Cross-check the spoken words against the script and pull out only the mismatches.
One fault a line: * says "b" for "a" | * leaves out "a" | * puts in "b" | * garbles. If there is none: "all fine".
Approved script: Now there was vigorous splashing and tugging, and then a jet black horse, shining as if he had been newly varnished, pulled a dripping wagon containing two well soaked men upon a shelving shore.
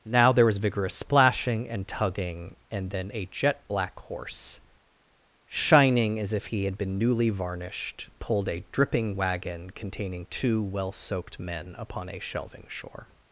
all fine